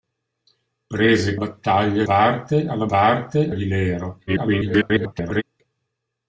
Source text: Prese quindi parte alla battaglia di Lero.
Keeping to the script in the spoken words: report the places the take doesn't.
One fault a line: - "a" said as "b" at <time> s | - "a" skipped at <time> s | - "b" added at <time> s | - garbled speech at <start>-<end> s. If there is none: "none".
- "quindi" said as "battaglia" at 1.3 s
- "battaglia" said as "parte" at 2.9 s
- garbled speech at 4.3-5.4 s